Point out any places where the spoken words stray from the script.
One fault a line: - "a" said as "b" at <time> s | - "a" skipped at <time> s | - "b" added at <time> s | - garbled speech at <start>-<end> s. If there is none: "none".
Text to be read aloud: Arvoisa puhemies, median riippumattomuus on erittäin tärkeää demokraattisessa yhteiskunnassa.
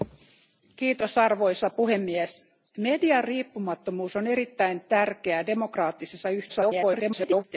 - garbled speech at 6.5-7.4 s